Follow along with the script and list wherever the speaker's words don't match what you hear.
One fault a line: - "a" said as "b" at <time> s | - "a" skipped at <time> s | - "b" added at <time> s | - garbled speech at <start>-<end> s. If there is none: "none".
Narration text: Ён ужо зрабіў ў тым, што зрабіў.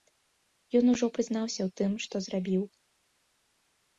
- "зрабіў" said as "прызнаўся" at 1.2 s